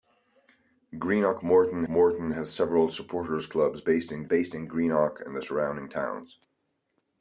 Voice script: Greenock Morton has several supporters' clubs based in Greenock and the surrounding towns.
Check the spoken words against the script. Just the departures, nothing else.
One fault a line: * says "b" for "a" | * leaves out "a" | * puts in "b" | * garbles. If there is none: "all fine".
* puts in "Morton"
* puts in "based in"